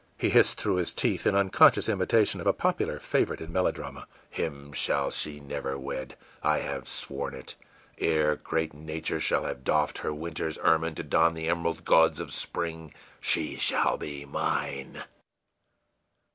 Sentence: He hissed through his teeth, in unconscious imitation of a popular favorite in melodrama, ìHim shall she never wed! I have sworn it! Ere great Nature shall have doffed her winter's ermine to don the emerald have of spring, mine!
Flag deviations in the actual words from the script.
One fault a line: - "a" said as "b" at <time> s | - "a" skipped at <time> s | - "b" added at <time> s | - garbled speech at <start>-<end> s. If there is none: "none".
- "have" said as "gauds" at 11.8 s
- "she shall be" added at 13.2 s